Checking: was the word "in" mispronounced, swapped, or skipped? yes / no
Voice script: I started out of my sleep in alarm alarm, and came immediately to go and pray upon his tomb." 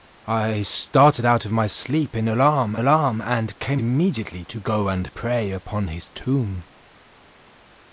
no